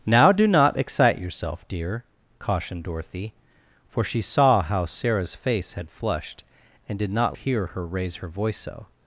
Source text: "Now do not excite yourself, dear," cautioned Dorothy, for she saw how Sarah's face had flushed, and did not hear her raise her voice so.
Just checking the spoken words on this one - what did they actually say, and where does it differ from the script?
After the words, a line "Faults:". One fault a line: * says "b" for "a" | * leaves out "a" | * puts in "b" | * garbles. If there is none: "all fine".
"Now do not excite yourself, dear," cautioned Dorothy, for she saw how Sarah's face had flushed, and did not hear her raise her voice so.
Faults:
all fine